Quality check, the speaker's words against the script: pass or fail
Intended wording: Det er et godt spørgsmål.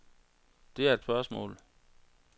fail